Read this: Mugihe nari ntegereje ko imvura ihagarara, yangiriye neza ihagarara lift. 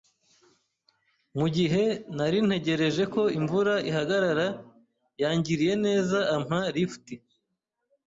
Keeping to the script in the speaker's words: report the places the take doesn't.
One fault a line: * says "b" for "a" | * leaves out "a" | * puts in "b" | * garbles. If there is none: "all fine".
* says "ampa" for "ihagarara"